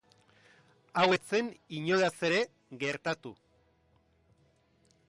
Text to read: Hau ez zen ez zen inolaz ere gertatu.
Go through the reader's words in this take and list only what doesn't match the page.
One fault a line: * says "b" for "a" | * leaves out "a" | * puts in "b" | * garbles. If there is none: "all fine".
* leaves out "ez zen"